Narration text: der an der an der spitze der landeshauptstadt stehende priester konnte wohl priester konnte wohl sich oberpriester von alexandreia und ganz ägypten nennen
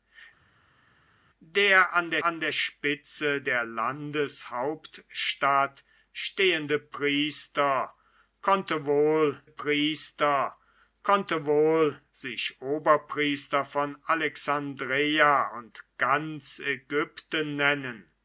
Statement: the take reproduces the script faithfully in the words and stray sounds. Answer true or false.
true